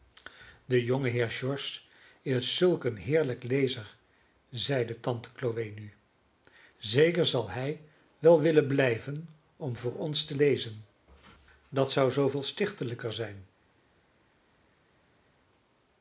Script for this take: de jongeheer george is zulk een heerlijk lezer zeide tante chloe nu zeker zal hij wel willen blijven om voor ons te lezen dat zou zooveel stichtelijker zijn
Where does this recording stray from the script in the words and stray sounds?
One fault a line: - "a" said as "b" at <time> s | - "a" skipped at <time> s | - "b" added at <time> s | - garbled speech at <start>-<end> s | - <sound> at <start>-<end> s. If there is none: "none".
none